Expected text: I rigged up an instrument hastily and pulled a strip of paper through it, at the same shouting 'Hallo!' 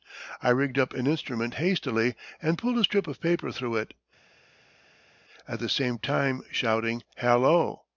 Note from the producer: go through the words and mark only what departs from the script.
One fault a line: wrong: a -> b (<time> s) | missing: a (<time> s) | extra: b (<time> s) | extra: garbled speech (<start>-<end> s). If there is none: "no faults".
extra: time (6.0 s)